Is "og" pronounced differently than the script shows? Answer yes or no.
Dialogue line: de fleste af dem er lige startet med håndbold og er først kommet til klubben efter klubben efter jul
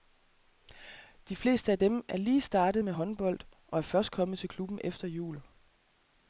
no